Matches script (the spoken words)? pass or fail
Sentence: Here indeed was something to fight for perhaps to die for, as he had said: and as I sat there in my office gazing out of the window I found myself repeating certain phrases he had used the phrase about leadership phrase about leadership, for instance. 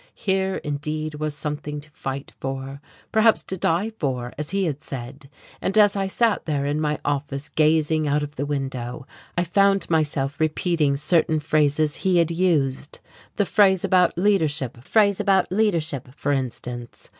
pass